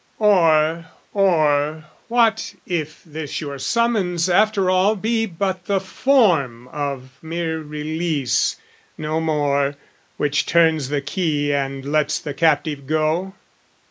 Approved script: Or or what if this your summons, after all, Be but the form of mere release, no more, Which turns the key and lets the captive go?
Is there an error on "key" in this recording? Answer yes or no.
no